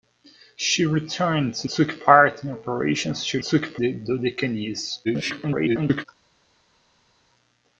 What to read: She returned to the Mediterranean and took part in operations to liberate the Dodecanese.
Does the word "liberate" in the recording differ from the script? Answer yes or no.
yes